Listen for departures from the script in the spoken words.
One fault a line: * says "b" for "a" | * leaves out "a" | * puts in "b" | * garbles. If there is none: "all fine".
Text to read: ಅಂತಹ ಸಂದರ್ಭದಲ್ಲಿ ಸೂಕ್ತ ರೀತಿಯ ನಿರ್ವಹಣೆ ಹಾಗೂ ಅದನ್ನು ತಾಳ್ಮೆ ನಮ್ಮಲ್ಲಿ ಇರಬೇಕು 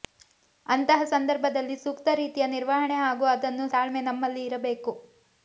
all fine